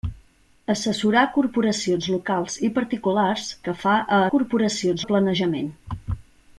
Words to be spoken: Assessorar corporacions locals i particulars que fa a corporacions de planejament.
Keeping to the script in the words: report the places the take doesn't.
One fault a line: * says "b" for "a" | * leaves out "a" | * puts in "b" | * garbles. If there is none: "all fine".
all fine